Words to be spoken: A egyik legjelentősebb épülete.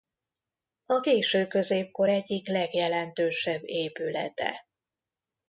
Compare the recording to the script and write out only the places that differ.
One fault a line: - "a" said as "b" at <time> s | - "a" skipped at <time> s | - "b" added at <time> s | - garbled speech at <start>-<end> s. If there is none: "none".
- "késő középkor" added at 1.0 s